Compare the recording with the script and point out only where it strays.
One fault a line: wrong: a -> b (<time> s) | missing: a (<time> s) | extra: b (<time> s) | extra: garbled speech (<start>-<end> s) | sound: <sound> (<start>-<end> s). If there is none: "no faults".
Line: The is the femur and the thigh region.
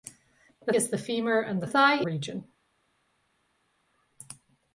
no faults